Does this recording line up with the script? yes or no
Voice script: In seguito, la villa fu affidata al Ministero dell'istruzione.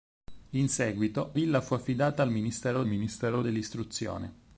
no